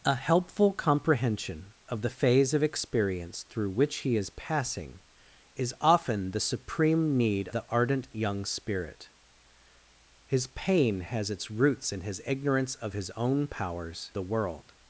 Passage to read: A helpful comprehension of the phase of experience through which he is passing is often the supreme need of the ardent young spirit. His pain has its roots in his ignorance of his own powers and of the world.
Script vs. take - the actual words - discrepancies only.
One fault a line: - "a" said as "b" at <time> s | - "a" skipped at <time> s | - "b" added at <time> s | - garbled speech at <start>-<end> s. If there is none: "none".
- "of" skipped at 7.5 s
- "and of" skipped at 14.1 s